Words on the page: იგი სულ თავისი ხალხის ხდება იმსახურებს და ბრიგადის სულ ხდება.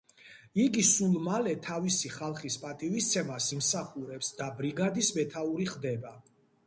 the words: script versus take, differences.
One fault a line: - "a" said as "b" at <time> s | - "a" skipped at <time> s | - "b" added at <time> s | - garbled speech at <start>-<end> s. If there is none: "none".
- "მალე" added at 1.2 s
- "ხდება" said as "პატივისცემას" at 2.6 s
- "სულ" said as "მეთაური" at 5.2 s